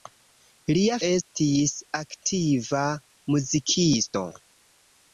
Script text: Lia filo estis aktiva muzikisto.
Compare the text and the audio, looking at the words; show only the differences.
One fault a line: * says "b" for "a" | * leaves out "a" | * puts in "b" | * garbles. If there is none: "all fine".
* leaves out "filo"